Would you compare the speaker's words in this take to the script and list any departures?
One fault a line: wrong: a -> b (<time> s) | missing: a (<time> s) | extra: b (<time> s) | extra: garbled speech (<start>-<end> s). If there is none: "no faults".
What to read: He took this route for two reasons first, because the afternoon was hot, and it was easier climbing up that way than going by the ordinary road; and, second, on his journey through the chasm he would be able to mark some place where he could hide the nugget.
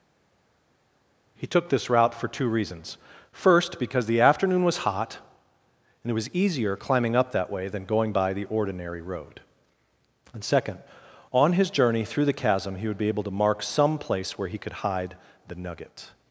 no faults